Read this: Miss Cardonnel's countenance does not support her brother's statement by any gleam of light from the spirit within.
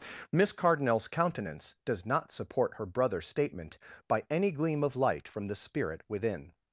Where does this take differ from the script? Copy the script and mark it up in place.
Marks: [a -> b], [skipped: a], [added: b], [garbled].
Miss Cardonnel's countenance does not support her brother's statement by any gleam of light from the spirit within.